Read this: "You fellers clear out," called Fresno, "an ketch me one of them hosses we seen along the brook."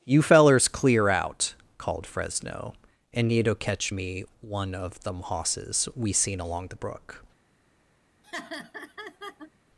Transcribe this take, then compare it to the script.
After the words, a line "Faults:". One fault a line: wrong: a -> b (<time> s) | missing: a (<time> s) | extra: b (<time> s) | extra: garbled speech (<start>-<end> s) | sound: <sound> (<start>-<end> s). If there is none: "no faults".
"You fellers clear out," called Fresno, "and need to catch me one of them hosses we seen along the brook."
Faults:
wrong: an ketch -> and need to catch (3.1 s)
sound: laugh (8.2-9.5 s)